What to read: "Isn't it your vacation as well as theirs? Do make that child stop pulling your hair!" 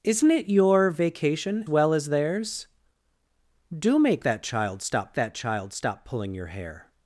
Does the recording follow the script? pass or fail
fail